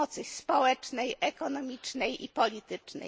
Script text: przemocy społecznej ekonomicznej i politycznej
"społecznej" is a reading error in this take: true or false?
false